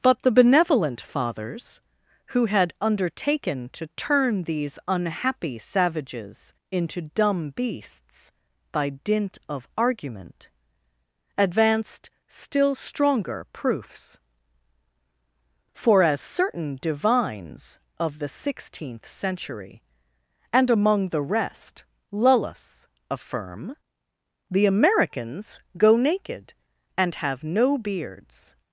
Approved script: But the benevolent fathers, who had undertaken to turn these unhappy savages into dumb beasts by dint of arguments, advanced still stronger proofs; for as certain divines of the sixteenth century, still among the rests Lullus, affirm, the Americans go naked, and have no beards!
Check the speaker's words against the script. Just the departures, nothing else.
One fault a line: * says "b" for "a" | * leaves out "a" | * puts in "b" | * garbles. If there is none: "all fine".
* says "argument" for "arguments"
* says "and" for "still"
* says "rest" for "rests"